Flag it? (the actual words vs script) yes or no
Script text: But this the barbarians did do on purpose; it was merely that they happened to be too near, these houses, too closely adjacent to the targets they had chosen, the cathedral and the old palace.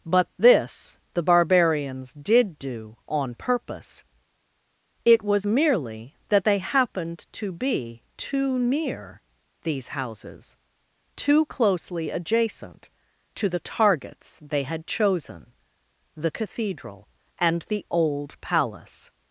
no